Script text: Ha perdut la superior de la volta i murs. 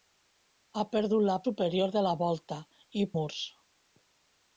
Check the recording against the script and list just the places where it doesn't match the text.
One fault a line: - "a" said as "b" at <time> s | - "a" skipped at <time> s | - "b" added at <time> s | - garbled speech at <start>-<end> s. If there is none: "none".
none